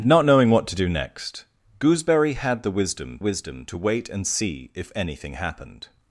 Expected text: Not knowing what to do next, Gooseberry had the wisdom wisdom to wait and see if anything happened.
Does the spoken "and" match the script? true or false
true